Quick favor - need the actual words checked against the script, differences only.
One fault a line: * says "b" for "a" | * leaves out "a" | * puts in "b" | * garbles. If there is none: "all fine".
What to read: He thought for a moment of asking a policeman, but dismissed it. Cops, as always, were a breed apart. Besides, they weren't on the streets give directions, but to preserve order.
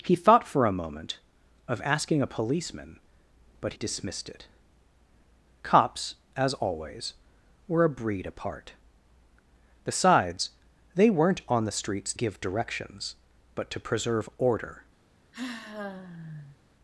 all fine